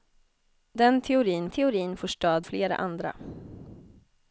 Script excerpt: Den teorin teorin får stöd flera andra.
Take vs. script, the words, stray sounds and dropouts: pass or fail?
pass